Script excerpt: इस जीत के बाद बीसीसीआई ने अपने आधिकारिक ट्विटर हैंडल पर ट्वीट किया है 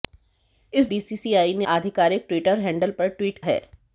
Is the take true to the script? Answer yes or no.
no